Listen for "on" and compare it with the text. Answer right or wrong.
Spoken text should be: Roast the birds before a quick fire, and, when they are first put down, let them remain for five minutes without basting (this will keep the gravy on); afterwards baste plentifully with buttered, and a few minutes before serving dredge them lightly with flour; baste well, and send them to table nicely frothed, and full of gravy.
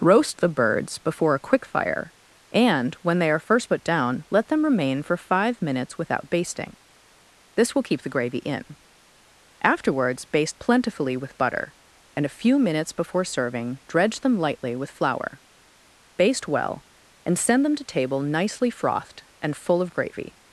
wrong